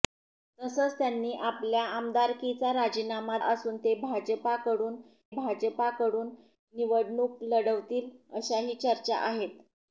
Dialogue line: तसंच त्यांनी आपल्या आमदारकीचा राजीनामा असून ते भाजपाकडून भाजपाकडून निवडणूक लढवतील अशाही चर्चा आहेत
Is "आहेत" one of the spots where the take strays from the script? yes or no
no